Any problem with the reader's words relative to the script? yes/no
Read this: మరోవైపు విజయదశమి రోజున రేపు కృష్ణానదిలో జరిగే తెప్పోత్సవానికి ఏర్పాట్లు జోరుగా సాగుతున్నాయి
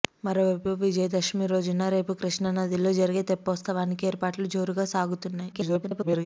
yes